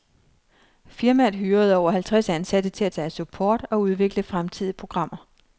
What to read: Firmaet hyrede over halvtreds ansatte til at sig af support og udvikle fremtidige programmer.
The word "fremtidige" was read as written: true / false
true